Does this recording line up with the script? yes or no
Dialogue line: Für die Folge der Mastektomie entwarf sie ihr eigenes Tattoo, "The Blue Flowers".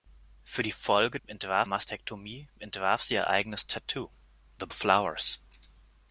no